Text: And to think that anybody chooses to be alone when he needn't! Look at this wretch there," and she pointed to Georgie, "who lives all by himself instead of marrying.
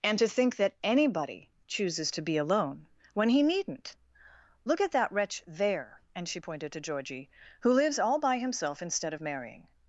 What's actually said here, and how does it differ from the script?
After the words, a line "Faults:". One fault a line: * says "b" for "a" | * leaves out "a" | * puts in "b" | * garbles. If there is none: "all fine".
And to think that anybody chooses to be alone when he needn't! Look at that wretch there," and she pointed to Georgie, "who lives all by himself instead of marrying.
Faults:
* says "that" for "this"